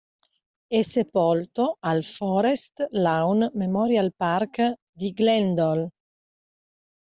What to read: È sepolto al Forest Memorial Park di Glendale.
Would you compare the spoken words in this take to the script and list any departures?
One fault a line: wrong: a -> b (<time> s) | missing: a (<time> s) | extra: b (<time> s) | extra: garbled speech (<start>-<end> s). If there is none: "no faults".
extra: Lawn (2.9 s)